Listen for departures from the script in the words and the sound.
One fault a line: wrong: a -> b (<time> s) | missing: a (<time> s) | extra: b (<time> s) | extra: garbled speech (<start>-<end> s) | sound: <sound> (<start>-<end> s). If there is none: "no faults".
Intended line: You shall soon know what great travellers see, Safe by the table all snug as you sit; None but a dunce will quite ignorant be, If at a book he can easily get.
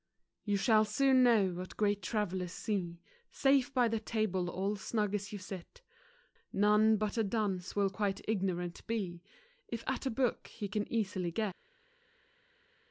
no faults